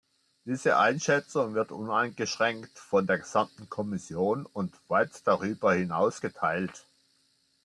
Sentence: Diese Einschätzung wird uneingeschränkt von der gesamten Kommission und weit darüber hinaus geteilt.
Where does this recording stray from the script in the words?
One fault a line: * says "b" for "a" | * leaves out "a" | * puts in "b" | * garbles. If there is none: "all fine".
all fine